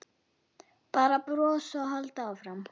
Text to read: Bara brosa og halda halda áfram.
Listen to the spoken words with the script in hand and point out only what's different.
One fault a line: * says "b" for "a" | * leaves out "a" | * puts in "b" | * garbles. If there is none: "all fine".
* leaves out "halda"